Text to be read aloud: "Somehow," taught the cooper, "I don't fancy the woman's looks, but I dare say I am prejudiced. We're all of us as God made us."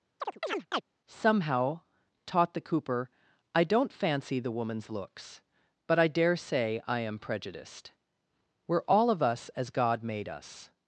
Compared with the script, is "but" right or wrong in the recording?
right